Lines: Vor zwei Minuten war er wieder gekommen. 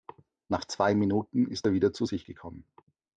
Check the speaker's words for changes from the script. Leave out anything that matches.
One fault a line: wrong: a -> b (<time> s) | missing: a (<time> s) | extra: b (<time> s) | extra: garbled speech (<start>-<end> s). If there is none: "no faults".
wrong: Vor -> Nach (0.5 s)
wrong: war -> ist (1.5 s)
extra: zu sich (1.9 s)